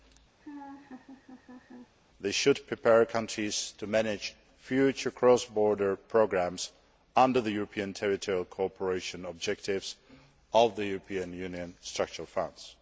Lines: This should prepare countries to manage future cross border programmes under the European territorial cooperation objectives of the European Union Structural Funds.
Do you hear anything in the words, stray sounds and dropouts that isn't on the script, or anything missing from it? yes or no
yes